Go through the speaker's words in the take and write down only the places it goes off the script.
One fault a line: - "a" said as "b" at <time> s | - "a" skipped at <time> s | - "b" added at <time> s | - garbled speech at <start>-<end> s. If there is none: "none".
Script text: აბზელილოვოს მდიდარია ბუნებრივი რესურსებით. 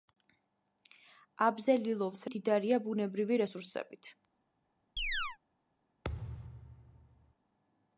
none